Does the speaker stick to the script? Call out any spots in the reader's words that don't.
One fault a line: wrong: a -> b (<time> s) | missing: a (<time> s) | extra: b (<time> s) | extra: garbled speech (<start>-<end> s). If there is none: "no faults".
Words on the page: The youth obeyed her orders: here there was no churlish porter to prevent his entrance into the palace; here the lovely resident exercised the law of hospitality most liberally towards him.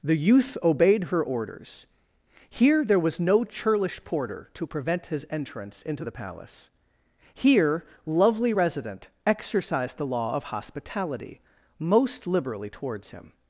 missing: the (7.8 s)